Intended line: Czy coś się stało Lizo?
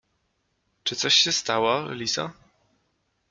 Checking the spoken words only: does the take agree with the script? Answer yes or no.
yes